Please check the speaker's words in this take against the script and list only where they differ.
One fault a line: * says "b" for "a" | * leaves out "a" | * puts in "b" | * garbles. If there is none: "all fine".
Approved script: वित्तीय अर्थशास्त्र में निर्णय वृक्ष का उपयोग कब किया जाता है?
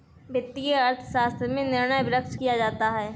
* leaves out "का उपयोग कब"